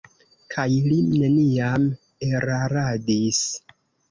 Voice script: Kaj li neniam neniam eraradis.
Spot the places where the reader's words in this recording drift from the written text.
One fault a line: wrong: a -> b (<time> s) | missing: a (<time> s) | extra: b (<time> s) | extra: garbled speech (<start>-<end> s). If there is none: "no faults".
missing: neniam (1.9 s)